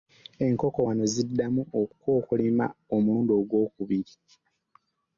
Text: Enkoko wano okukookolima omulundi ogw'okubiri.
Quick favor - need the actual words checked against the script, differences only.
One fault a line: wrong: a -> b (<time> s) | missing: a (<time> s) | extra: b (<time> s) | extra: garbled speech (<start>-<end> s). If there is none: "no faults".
extra: ziddamu (1.1 s)